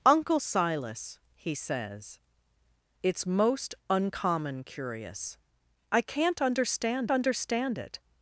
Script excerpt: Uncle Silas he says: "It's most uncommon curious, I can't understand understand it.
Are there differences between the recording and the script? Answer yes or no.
no